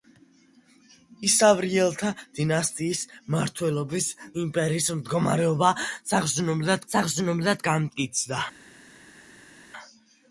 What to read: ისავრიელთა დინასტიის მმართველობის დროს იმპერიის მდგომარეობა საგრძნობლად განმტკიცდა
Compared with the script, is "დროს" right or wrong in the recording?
wrong